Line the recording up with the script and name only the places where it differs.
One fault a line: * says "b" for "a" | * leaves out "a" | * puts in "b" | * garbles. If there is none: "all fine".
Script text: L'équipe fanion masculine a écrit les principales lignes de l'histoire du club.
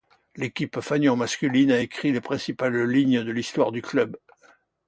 all fine